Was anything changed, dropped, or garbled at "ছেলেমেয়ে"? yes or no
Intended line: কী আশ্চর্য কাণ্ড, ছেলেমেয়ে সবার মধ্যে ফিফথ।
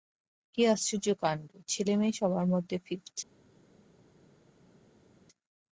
no